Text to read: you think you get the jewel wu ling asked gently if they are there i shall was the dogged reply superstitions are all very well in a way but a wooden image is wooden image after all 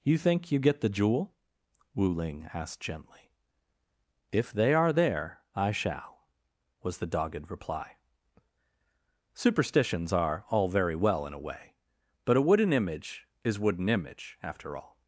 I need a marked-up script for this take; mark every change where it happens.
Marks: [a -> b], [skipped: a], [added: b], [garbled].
you think you get the jewel wu ling asked gently if they are there i shall was the dogged reply superstitions are all very well in a way but a wooden image is wooden image after all